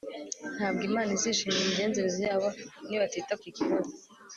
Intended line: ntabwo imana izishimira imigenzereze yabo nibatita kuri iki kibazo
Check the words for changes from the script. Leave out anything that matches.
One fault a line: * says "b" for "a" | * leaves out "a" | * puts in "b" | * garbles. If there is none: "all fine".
* leaves out "kuri"